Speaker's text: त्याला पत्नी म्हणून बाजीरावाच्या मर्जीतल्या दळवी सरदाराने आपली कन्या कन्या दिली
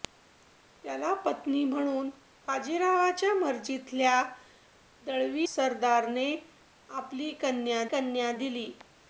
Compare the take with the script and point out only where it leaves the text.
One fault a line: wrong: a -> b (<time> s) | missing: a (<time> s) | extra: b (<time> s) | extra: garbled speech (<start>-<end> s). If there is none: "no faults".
no faults